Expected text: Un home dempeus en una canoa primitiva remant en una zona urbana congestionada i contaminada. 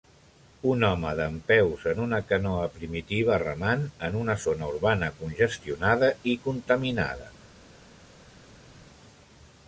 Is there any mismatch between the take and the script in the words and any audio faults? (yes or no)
no